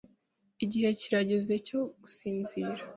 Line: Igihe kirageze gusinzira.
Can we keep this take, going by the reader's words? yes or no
no